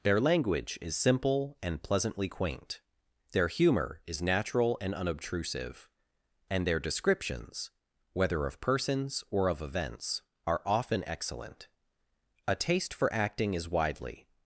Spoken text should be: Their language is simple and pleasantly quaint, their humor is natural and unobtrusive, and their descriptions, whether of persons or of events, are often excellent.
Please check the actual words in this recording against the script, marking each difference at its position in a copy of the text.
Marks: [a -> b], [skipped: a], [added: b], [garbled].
Their language is simple and pleasantly quaint, their humor is natural and unobtrusive, and their descriptions, whether of persons or of events, are often excellent. [added: A taste for acting is widely]